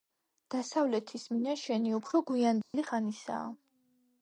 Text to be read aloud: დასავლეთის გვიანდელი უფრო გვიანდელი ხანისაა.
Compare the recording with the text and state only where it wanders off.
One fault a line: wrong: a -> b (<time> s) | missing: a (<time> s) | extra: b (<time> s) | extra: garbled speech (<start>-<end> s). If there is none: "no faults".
wrong: გვიანდელი -> მინაშენი (1.3 s)